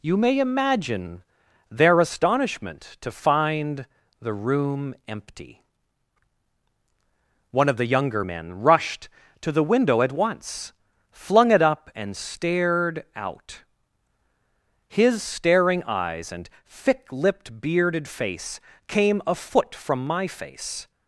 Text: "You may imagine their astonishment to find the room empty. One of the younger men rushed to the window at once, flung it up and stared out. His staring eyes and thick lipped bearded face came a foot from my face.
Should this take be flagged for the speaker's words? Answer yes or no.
no